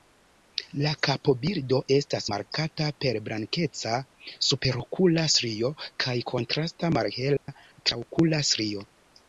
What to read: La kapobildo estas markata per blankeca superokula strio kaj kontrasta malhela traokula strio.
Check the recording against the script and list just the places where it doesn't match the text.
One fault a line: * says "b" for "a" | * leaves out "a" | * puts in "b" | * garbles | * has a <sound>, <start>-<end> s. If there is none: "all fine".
* has a dropout, 7.4-7.5 s